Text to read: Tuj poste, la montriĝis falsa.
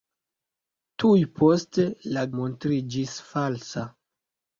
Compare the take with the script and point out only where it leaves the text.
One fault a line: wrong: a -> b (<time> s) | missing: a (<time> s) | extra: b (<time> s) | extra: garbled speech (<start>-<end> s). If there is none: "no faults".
no faults